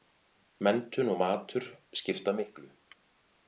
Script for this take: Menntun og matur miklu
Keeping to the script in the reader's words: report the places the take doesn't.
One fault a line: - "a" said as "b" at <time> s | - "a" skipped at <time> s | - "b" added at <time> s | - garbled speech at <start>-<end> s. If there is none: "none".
- "skipta" added at 2.0 s